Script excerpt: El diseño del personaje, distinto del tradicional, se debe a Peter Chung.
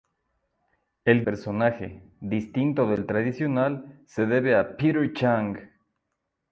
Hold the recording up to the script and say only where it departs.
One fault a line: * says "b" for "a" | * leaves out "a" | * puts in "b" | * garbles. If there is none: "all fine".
* leaves out "diseño del"